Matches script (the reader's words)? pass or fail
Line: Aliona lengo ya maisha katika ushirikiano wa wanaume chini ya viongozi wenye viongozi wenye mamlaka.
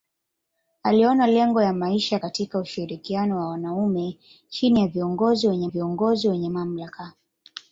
pass